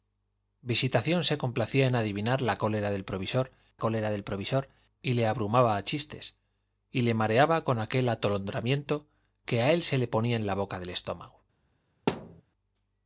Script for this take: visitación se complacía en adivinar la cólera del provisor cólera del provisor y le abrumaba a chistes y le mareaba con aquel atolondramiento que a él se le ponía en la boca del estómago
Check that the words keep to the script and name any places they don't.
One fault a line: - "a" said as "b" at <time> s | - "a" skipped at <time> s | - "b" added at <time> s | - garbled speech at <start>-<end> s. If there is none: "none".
none